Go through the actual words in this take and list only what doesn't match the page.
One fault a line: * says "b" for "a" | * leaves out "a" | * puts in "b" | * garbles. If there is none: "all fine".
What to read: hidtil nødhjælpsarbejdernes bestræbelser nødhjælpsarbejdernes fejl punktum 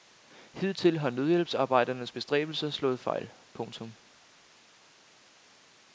* puts in "har"
* says "slået" for "nødhjælpsarbejdernes"